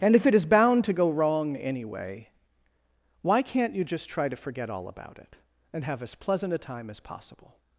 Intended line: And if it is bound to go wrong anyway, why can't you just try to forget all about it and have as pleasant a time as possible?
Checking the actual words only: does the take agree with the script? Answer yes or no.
yes